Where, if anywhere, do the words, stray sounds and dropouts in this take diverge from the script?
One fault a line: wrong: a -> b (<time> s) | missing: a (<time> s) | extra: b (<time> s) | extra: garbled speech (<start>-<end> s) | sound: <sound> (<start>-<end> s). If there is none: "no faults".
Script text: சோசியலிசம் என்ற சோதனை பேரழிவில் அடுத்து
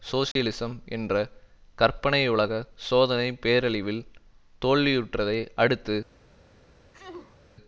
sound: dropout (0.3-0.4 s)
extra: கற்பனையுலக (1.8 s)
extra: தோல்வியுற்றதை (4.6 s)
sound: sneeze (6.9-7.4 s)